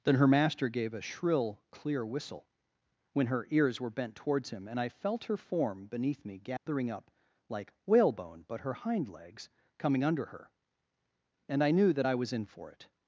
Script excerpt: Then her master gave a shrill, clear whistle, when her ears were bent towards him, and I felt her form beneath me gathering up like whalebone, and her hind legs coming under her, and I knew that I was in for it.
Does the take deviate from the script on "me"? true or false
false